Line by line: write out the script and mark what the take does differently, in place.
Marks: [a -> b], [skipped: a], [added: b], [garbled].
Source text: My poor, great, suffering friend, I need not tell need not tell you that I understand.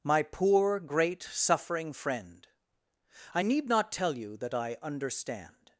My poor, great, suffering friend, I need not tell [skipped: need not tell] you that I understand.